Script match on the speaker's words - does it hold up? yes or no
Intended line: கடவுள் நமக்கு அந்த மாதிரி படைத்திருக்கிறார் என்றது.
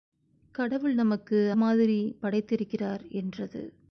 no